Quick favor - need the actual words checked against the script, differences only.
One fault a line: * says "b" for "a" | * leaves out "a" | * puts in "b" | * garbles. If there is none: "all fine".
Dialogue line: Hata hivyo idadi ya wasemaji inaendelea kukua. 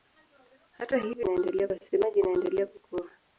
* says "inaendelea" for "idadi"